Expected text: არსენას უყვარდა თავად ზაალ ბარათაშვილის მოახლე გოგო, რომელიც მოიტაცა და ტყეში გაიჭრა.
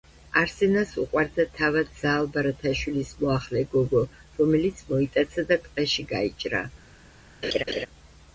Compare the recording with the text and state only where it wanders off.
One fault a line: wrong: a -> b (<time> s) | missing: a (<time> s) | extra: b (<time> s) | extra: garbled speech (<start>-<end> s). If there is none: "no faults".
no faults